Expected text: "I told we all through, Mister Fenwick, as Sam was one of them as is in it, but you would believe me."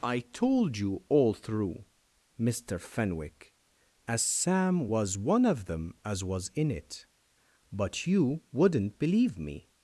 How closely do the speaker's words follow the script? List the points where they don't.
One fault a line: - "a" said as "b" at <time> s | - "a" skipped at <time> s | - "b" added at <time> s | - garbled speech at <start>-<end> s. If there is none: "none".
- "we" said as "you" at 0.8 s
- "is" said as "was" at 6.2 s
- "would" said as "wouldn't" at 8.5 s